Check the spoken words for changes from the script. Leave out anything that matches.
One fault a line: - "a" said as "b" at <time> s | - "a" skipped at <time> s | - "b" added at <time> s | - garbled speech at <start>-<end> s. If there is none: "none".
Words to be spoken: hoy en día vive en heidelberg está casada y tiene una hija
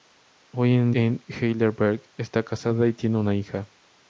- "día vive" skipped at 0.9 s